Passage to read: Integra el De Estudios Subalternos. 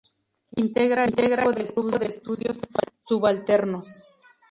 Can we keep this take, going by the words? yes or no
no